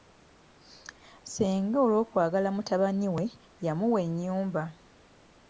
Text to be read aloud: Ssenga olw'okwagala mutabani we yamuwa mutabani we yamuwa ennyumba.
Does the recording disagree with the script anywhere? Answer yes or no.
yes